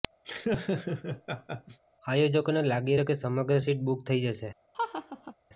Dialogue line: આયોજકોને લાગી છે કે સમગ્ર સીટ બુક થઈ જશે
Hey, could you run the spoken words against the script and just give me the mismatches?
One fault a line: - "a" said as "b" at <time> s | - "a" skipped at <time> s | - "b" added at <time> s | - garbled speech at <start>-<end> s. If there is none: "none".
none